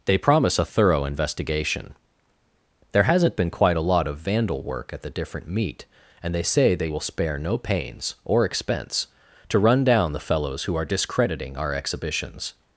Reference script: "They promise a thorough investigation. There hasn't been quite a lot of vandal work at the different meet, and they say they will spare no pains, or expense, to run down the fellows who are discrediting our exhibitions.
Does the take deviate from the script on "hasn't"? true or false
false